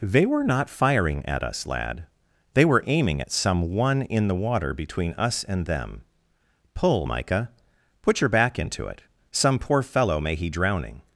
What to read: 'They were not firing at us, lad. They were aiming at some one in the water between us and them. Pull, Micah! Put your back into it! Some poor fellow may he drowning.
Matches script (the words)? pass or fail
pass